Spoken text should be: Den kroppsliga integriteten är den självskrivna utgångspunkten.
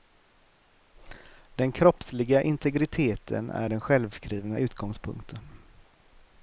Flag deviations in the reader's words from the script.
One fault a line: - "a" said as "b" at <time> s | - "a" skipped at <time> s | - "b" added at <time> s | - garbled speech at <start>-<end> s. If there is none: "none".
none